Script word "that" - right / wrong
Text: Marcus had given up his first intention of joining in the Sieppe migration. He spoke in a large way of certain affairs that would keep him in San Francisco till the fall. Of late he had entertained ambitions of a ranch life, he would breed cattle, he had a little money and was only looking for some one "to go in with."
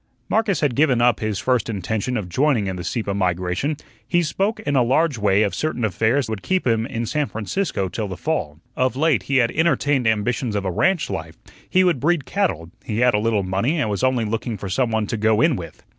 wrong